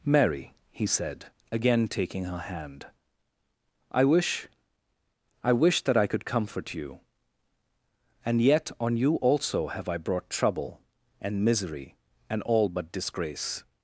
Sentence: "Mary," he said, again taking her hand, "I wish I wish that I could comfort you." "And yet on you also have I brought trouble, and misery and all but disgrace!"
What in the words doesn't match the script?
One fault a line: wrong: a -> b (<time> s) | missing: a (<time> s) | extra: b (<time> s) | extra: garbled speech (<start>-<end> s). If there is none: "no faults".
no faults